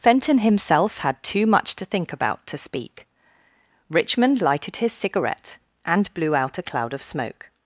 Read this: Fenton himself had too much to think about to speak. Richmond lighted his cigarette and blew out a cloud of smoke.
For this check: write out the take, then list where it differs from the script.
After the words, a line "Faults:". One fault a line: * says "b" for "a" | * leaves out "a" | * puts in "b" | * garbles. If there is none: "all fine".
Fenton himself had too much to think about to speak. Richmond lighted his cigarette and blew out a cloud of smoke.
Faults:
all fine